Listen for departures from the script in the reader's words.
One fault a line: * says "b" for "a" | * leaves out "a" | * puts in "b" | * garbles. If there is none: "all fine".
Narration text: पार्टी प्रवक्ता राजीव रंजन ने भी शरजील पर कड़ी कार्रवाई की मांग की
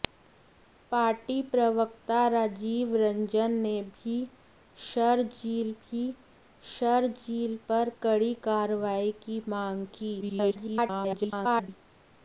* puts in "भी शरजील"
* garbles